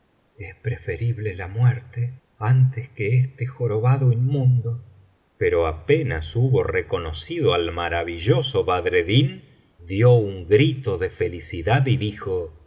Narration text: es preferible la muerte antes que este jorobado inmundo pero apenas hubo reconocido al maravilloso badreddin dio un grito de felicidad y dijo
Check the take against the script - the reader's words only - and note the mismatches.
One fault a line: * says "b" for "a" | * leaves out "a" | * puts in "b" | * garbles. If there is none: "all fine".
all fine